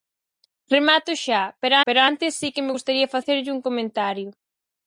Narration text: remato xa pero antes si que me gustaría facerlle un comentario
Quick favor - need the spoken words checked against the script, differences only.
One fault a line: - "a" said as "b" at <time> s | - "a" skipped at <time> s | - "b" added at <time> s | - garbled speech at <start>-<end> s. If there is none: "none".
- "pero" added at 1.8 s